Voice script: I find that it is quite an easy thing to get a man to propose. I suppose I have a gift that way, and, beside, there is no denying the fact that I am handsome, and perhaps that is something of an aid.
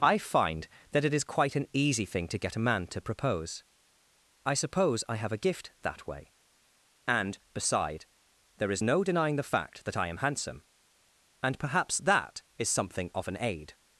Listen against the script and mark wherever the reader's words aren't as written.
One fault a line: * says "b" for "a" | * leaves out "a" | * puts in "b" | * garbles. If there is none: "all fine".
all fine